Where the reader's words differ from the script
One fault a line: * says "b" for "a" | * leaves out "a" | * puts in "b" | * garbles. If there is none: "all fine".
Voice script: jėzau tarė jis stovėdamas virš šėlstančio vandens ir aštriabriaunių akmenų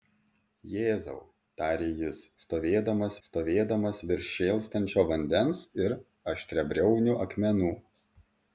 * puts in "stovėdamas"